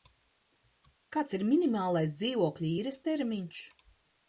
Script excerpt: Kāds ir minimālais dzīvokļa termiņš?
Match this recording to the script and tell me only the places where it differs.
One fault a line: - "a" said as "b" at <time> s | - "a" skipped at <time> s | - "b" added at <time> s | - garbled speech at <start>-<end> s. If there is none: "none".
- "īres" added at 2.8 s